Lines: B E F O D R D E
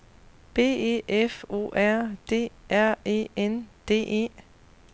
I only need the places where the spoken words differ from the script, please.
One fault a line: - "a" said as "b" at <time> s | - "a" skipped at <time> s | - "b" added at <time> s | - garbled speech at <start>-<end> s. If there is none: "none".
- "R" added at 1.8 s
- "E N" added at 3.0 s